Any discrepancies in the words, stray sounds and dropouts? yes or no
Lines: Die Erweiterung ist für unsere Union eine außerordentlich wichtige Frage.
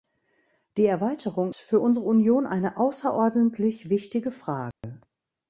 yes